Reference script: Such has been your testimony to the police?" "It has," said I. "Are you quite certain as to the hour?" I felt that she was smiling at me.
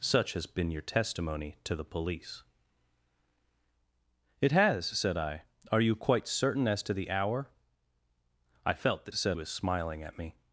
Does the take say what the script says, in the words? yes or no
no